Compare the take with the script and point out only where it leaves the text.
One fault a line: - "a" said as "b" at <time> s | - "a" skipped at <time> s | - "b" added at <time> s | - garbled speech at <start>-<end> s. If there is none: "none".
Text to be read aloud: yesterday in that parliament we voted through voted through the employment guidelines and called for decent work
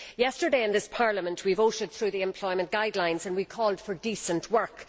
- "that" said as "this" at 0.7 s
- "voted through" skipped at 2.1 s
- "we" added at 3.3 s